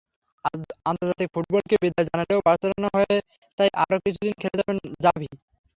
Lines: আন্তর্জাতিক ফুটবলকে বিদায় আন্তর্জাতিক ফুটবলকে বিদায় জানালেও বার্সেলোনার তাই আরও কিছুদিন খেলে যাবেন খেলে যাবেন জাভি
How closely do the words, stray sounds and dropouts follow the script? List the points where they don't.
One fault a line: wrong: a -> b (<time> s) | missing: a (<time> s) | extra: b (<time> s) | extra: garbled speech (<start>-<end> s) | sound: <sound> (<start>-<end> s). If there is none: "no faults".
missing: আন্তর্জাতিক ফুটবলকে বিদায় (2.1 s)
extra: হয়ে (3.0 s)
missing: খেলে যাবেন (4.8 s)